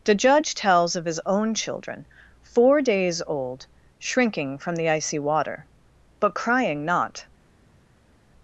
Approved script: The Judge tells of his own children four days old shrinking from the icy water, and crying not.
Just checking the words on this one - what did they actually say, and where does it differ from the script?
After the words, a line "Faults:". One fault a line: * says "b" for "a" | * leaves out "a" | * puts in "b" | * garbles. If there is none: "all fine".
The Judge tells of his own children four days old shrinking from the icy water, but crying not.
Faults:
* says "but" for "and"